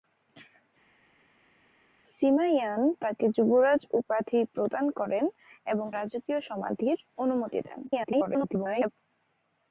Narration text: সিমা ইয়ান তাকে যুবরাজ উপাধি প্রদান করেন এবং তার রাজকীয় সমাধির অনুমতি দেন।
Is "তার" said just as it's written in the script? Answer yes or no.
no